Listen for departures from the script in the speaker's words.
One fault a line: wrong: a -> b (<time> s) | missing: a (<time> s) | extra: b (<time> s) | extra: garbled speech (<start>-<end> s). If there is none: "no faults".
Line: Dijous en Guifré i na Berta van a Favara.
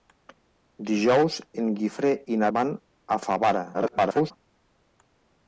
missing: Berta (2.5 s)
extra: garbled speech (3.7-4.3 s)